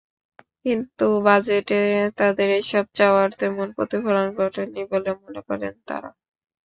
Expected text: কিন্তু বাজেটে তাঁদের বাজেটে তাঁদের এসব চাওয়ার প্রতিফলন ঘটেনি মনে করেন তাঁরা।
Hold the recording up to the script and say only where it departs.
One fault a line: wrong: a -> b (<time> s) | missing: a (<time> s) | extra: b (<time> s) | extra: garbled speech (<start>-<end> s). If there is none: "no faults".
missing: বাজেটে তাঁদের (2.5 s)
extra: তেমন (3.4 s)
extra: বলে (4.9 s)